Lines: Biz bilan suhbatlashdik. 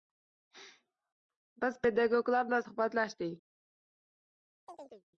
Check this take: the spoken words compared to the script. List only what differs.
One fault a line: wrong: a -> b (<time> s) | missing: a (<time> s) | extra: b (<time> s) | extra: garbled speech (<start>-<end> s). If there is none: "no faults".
extra: pedagoglar (1.9 s)